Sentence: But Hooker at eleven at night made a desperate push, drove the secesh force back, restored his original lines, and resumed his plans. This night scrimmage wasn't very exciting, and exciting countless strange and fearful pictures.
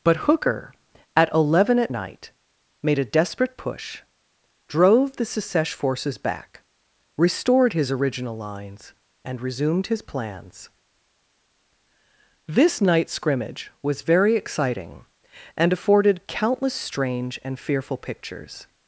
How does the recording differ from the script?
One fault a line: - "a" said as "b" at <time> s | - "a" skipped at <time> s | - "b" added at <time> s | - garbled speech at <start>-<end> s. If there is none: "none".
- "force" said as "forces" at 5.7 s
- "wasn't" said as "was" at 13.8 s
- "exciting" said as "afforded" at 15.7 s